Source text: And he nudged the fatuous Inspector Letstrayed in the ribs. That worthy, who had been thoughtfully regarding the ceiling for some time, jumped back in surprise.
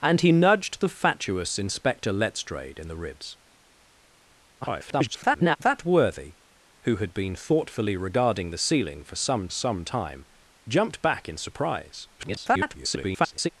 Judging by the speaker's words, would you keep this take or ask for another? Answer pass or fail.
fail